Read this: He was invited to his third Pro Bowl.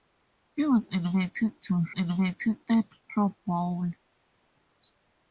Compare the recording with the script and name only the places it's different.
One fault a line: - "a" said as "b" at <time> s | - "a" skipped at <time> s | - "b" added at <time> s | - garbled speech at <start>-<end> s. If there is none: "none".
- "his" said as "invited" at 1.9 s